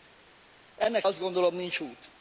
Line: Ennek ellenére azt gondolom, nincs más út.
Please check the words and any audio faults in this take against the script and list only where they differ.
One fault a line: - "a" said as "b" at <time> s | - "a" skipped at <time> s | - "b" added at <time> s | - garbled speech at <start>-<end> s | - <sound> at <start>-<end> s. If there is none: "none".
- "ellenére" skipped at 1.1 s
- "más" skipped at 1.8 s